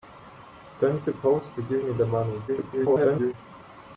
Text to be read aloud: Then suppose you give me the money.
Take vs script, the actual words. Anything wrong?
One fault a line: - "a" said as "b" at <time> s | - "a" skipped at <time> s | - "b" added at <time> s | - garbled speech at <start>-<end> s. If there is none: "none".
- garbled speech at 2.5-3.3 s